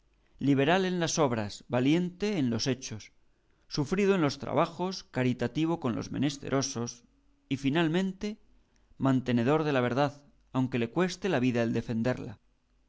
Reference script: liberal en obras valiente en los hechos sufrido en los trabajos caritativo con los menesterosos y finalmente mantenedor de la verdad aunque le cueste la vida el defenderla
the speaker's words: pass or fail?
fail